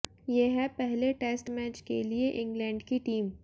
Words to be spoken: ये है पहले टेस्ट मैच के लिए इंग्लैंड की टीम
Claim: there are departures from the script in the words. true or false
false